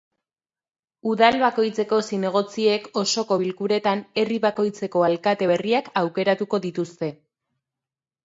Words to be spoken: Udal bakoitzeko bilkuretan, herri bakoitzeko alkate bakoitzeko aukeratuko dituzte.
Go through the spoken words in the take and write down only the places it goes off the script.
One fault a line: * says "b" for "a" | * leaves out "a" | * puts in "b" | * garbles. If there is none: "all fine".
* puts in "zinegotziek osoko"
* says "berriak" for "bakoitzeko"